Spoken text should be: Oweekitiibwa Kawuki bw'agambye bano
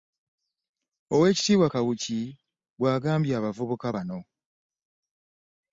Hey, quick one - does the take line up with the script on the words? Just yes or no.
no